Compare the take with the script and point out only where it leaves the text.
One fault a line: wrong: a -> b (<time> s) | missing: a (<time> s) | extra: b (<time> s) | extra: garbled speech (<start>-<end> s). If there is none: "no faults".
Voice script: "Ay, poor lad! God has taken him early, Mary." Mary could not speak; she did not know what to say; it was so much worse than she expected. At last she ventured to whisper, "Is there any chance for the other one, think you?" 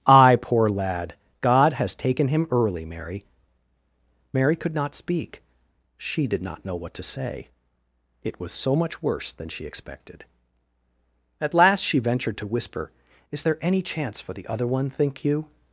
no faults